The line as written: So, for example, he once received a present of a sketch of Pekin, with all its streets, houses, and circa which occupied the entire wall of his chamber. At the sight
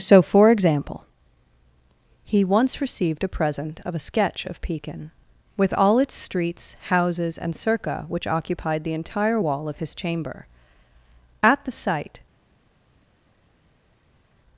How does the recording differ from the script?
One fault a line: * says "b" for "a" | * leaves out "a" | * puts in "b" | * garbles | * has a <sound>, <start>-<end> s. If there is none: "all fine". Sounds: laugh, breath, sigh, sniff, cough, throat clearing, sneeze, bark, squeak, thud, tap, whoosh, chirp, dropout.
all fine